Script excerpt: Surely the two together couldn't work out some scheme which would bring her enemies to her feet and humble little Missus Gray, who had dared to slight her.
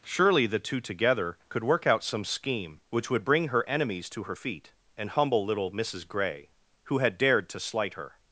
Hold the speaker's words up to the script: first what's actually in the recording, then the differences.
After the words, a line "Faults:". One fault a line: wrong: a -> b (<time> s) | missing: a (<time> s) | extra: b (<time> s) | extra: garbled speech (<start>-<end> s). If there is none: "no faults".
Surely the two together could work out some scheme which would bring her enemies to her feet and humble little Missus Gray, who had dared to slight her.
Faults:
wrong: couldn't -> could (1.5 s)